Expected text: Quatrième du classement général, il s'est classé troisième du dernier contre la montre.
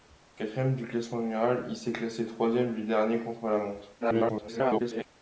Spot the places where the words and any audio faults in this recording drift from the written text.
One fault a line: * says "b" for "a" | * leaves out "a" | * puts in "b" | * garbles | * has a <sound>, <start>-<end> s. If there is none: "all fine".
* garbles